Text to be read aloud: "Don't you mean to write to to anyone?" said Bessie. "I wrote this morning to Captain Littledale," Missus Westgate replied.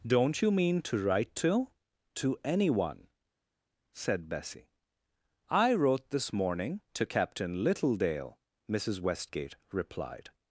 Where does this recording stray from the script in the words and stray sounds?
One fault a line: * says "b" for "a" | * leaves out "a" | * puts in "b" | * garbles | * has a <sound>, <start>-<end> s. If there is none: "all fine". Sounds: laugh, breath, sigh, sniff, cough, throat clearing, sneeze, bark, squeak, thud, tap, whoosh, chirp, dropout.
all fine